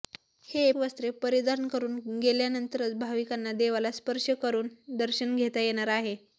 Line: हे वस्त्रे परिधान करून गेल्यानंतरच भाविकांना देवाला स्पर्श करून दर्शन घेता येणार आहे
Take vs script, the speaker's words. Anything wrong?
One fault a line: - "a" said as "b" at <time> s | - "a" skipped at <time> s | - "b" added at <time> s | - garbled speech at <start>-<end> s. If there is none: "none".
none